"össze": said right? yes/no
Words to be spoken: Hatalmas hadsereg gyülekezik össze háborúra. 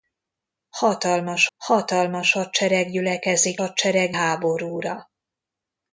no